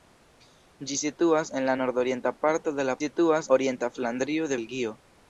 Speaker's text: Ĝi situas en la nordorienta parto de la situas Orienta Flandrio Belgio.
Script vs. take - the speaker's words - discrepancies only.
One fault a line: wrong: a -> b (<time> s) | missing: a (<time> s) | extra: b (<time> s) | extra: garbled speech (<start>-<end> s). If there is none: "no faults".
no faults